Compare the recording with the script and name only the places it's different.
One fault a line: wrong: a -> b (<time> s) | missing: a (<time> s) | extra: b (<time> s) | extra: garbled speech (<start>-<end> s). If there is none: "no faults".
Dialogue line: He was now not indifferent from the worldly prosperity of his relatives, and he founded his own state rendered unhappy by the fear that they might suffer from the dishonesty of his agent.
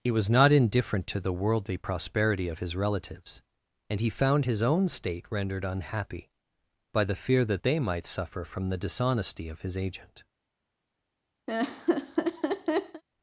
missing: now (0.3 s)
wrong: from -> to (1.1 s)
wrong: founded -> found (4.1 s)